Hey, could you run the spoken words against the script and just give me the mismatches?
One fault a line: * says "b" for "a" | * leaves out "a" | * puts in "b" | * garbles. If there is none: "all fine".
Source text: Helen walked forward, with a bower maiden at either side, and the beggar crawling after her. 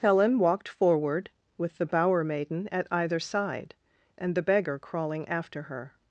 * says "the" for "a"